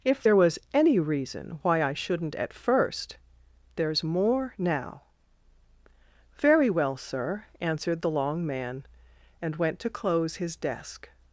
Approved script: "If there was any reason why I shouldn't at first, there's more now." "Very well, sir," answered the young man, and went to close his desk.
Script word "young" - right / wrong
wrong